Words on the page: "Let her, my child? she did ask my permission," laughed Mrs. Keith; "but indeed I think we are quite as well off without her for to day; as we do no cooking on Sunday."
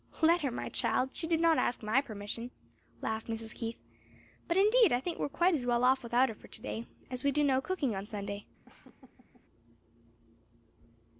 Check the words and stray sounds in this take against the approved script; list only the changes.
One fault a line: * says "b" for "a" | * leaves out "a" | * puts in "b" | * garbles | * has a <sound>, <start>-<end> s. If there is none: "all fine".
* puts in "not"
* has a laugh, 8.7-9.5 s